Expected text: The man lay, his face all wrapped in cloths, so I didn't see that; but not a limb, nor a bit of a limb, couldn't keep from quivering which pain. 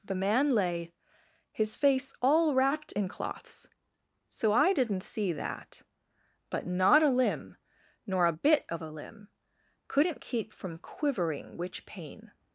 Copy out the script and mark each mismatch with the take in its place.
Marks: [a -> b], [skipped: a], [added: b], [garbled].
The man lay, his face all wrapped in cloths, so I didn't see that; but not a limb, nor a bit of a limb, couldn't keep from quivering which pain.